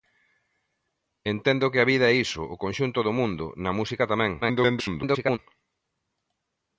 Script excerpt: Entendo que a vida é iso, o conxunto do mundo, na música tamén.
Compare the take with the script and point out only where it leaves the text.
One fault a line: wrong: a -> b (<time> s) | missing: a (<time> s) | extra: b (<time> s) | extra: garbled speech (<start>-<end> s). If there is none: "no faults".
extra: garbled speech (4.4-5.4 s)